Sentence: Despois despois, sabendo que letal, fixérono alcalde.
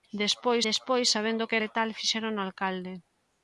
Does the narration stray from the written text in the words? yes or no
no